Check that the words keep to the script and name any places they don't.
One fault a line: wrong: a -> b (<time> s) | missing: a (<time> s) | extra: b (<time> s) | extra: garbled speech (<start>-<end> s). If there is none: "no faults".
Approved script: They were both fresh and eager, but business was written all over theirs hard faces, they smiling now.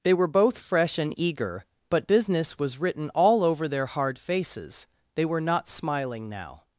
wrong: theirs -> their (3.7 s)
extra: were not (5.3 s)